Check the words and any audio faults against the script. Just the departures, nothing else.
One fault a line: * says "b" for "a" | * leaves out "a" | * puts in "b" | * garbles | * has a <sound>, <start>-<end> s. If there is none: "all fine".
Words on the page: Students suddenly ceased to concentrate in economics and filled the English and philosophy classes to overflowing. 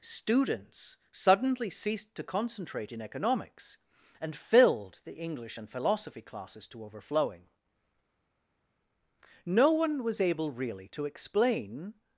* puts in "No one was able really to explain"